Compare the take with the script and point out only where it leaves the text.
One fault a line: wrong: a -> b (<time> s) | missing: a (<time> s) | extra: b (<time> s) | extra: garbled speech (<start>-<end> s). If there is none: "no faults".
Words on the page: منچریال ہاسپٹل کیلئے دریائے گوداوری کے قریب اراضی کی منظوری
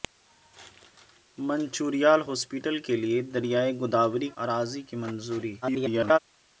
missing: کے قریب (4.3 s)
extra: garbled speech (5.6-6.2 s)